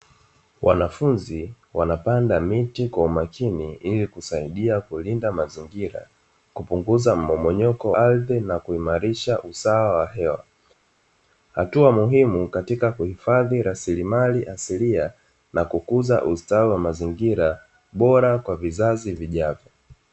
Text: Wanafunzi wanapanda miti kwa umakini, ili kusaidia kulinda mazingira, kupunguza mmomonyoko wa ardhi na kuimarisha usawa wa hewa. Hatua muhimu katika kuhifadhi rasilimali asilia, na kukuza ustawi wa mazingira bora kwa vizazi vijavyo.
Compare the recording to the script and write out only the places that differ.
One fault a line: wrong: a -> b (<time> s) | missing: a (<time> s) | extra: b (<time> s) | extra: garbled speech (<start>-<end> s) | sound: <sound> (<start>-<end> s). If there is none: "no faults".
missing: wa (7.9 s)